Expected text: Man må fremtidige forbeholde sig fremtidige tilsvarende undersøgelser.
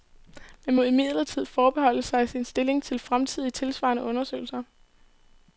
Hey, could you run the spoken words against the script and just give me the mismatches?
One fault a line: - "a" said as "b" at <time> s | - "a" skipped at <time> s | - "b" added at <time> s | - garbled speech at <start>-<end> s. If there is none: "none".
- "fremtidige" said as "imidlertid" at 0.8 s
- "sin stilling til" added at 2.3 s